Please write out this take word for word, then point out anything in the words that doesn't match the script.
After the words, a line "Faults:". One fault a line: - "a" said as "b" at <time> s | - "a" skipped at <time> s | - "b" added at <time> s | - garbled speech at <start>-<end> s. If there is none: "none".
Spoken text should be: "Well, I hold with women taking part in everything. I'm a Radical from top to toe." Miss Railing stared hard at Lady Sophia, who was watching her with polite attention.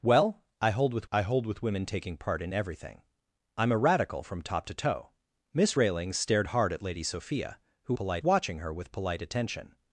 "Well, I hold with I hold with women taking part in everything. I'm a Radical from top to toe." Miss Railing stared hard at Lady Sophia, who polite watching her with polite attention.
Faults:
- "I hold with" added at 1.1 s
- "was" said as "polite" at 8.0 s